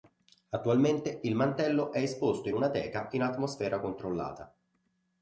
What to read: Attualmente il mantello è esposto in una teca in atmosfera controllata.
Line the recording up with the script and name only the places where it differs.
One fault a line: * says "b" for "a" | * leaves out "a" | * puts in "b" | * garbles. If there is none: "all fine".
all fine